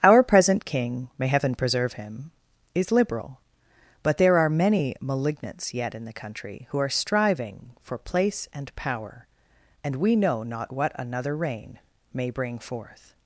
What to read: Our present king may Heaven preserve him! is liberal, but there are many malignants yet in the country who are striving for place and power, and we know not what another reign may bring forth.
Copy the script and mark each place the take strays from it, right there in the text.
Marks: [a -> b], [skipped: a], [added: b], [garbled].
Our present king may Heaven preserve him! is liberal, but there are many malignants yet in the country who are striving for place and power, and we know not what another reign may bring forth.